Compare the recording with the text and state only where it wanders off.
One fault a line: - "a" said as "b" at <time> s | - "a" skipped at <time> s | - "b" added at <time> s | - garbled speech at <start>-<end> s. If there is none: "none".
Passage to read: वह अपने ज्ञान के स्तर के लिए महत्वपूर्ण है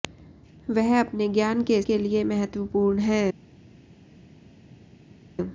- "स्तर" skipped at 1.8 s